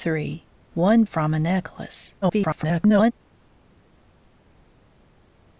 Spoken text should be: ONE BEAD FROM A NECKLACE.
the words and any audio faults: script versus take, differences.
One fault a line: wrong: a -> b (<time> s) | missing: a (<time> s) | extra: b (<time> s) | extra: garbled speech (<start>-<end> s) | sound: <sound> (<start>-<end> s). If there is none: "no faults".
missing: BEAD (1.0 s)
extra: garbled speech (2.2-3.1 s)